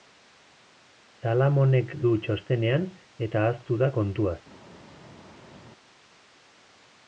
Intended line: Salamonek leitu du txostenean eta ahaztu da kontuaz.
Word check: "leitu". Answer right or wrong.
wrong